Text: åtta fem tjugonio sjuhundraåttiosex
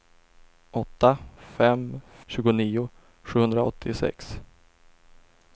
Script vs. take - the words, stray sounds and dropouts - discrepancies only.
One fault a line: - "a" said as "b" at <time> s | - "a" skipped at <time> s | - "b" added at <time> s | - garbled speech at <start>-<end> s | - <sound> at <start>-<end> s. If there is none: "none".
none